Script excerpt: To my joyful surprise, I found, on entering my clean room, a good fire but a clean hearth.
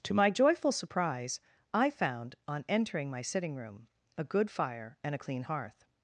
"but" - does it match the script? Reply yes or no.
no